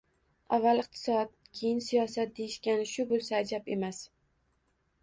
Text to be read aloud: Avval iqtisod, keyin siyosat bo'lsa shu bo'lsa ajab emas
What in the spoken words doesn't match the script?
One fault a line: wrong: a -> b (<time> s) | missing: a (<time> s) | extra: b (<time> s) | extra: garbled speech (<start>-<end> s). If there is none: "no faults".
wrong: bo'lsa -> deyishgani (2.4 s)